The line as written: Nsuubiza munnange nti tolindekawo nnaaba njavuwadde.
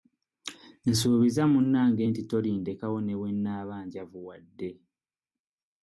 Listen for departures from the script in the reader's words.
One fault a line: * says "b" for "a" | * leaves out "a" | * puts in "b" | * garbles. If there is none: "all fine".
* puts in "ne bwe"